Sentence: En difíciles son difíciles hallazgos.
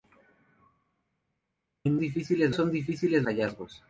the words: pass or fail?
pass